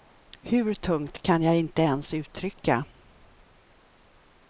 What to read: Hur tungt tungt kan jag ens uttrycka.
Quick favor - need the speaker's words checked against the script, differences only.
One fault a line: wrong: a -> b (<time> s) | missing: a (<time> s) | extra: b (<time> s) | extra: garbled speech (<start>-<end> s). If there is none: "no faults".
missing: tungt (1.2 s)
extra: inte (1.6 s)